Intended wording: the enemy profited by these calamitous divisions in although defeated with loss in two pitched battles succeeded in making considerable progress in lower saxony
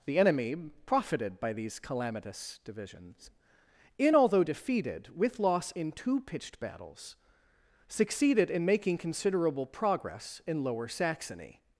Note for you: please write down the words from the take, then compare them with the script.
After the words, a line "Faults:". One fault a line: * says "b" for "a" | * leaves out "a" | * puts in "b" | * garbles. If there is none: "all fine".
the enemy profited by these calamitous divisions in although defeated with loss in two pitched battles succeeded in making considerable progress in lower saxony
Faults:
all fine